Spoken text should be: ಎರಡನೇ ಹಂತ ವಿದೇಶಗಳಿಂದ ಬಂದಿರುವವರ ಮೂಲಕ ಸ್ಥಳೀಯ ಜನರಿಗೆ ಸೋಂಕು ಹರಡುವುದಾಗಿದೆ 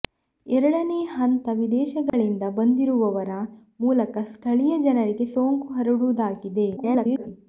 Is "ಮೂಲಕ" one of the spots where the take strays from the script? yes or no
no